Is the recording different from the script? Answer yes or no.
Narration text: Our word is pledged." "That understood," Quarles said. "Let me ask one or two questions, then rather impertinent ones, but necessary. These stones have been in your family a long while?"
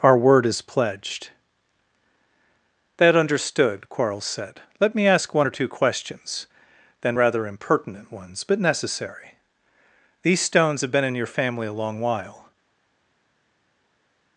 no